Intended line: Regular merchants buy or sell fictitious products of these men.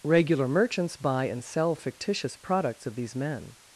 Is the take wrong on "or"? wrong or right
wrong